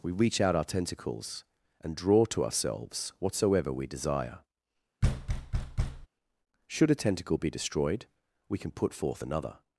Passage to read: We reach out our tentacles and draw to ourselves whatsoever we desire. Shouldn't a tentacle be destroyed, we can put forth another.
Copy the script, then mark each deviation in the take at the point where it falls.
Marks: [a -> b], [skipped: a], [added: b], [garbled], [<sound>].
We reach out our tentacles and draw to ourselves whatsoever we desire. [thud] [Shouldn't -> Should] a tentacle be destroyed, we can put forth another.